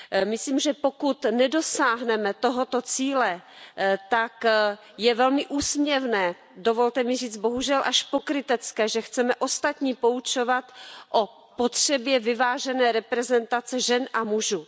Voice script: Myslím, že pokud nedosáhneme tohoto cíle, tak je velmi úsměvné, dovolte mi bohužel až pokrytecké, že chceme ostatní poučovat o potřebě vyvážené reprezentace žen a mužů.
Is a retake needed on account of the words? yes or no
yes